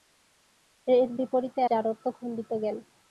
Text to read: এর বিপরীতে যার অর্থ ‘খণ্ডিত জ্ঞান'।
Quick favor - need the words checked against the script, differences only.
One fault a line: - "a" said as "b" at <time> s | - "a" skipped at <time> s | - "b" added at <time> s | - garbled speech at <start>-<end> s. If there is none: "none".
none